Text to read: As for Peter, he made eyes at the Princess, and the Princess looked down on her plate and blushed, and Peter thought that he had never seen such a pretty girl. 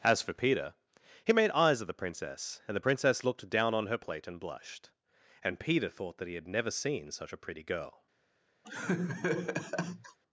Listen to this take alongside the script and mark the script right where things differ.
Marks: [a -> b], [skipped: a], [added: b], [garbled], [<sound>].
As for Peter, he made eyes at the Princess, and the Princess looked down on her plate and blushed, and Peter thought that he had never seen such a pretty girl. [laugh]